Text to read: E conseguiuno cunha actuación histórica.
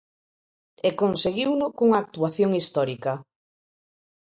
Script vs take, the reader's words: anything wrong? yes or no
no